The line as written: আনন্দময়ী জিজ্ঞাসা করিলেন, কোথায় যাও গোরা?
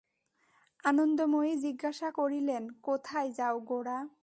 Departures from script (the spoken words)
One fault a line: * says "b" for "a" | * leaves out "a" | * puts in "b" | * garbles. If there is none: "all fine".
all fine